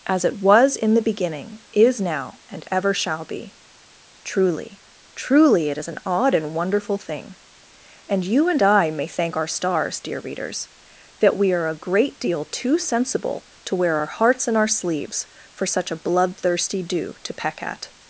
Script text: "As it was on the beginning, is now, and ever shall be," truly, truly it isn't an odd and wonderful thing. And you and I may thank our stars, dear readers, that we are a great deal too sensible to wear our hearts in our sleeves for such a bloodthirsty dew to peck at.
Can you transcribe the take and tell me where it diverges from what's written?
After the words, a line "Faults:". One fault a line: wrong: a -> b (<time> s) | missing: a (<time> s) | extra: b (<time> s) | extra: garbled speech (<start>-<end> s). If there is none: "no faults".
"As it was in the beginning, is now, and ever shall be," truly, truly it is an odd and wonderful thing. And you and I may thank our stars, dear readers, that we are a great deal too sensible to wear our hearts in our sleeves for such a bloodthirsty dew to peck at.
Faults:
wrong: on -> in (0.8 s)
wrong: isn't -> is (5.8 s)